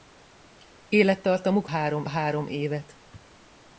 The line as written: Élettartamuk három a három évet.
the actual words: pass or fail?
pass